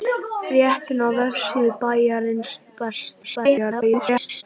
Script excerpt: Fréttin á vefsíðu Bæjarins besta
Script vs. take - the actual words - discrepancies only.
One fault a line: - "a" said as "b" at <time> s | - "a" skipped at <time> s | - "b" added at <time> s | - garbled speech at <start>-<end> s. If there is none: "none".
- garbled speech at 3.2-4.4 s